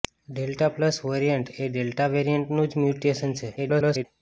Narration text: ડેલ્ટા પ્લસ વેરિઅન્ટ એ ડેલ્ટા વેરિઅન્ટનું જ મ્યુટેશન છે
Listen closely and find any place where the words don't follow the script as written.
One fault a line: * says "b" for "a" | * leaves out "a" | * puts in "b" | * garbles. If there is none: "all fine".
* garbles